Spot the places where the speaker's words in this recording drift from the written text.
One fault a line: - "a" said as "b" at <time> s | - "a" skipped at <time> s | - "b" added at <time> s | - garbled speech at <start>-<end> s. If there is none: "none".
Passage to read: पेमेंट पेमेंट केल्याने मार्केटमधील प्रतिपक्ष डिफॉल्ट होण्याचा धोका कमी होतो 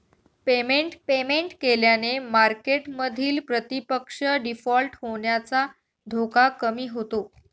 none